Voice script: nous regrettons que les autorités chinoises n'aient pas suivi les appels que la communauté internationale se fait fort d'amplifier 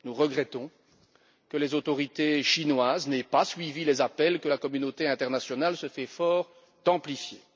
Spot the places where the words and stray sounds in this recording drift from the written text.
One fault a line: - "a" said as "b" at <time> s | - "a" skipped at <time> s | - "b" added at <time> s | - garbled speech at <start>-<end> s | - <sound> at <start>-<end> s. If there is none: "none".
none